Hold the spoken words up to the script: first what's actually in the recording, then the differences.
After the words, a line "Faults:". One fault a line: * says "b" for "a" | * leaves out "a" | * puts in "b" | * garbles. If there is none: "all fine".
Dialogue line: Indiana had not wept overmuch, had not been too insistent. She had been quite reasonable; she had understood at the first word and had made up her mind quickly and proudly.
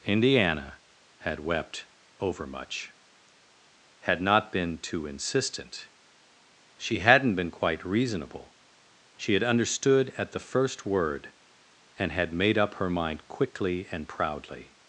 Indiana had wept overmuch, had not been too insistent. She hadn't been quite reasonable; she had understood at the first word and had made up her mind quickly and proudly.
Faults:
* leaves out "not"
* says "hadn't" for "had"